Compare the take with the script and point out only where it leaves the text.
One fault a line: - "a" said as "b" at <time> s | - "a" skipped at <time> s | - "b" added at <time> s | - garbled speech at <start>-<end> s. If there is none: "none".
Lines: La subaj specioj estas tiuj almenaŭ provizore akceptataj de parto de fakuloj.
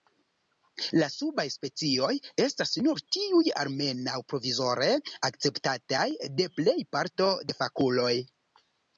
- "nur" added at 2.9 s
- "plej" added at 6.6 s